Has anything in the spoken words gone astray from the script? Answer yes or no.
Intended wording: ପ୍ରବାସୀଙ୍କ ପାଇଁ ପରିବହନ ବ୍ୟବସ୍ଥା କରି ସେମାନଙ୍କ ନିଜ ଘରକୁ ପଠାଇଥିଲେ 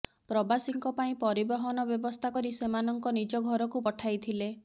no